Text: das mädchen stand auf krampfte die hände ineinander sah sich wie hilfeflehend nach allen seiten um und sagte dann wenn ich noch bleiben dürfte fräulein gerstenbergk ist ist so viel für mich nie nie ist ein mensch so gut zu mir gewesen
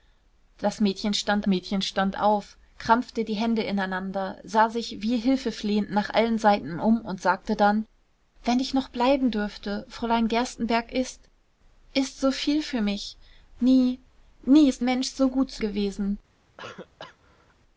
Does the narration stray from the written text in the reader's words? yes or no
yes